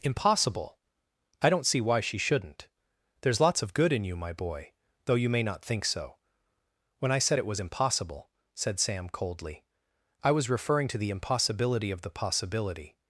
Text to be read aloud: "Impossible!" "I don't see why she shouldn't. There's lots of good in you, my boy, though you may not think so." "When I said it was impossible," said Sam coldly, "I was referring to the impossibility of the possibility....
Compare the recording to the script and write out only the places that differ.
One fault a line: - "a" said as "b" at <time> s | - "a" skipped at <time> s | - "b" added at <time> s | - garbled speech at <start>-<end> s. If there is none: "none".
none